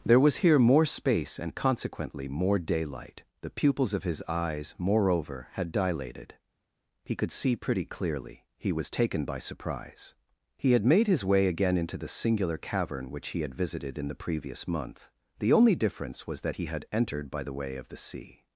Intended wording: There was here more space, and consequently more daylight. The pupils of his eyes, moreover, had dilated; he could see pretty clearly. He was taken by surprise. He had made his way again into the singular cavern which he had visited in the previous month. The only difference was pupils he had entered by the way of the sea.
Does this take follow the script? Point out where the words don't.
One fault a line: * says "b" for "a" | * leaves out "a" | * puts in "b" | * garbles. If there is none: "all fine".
* says "that" for "pupils"